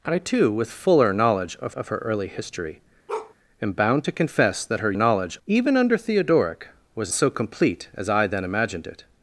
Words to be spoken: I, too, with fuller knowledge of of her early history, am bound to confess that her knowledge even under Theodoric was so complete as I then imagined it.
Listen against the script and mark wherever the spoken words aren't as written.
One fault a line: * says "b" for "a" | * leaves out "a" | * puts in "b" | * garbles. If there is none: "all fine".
all fine